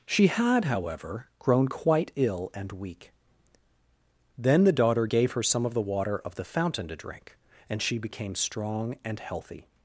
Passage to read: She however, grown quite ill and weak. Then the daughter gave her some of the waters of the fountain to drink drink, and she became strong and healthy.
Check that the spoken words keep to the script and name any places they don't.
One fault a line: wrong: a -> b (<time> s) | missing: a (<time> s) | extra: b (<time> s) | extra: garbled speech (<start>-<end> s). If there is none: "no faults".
extra: had (0.3 s)
wrong: waters -> water (5.8 s)
missing: drink (7.4 s)